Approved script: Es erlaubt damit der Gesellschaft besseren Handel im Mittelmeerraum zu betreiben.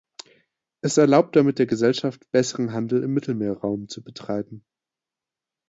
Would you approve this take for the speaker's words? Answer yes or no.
yes